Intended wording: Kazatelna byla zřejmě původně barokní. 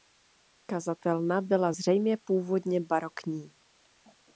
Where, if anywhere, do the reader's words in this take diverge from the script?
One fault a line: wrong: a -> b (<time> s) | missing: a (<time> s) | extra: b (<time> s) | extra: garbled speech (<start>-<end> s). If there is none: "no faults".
no faults